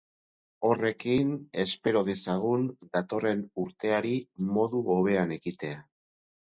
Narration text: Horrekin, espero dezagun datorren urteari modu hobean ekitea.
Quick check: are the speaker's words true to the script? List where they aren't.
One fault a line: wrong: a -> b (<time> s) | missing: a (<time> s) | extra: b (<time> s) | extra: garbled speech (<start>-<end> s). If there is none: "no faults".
no faults